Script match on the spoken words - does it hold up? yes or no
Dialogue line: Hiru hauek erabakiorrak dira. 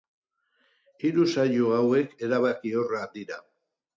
no